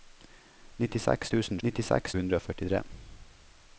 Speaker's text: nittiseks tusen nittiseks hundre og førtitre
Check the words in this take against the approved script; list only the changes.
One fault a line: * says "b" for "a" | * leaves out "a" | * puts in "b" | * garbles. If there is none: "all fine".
all fine